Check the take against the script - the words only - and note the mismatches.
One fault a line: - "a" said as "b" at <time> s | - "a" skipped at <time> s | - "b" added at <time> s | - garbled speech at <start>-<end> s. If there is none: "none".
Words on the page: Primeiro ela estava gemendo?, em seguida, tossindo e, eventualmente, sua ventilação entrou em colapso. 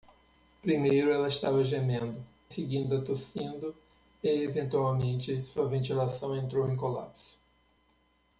- "em" skipped at 2.2 s